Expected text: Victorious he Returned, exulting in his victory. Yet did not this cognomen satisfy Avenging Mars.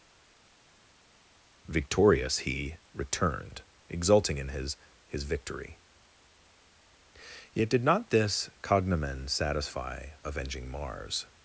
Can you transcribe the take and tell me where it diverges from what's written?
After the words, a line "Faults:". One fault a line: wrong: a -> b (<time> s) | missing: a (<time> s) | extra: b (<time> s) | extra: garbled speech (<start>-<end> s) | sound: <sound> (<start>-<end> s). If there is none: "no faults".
Victorious he Returned, exulting in his his victory. Yet did not this cognomen satisfy Avenging Mars.
Faults:
extra: his (5.1 s)